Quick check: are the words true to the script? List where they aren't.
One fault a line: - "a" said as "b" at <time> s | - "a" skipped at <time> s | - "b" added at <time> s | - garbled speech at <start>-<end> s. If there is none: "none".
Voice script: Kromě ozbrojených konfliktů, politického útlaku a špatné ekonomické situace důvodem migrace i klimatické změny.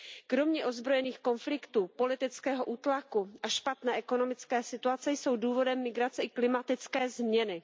- "jsou" added at 5.1 s